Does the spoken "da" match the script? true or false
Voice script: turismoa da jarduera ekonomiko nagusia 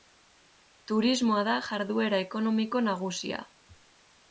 true